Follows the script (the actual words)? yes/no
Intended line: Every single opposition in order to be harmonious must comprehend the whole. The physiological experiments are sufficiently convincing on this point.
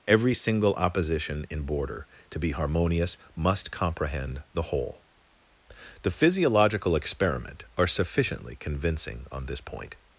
no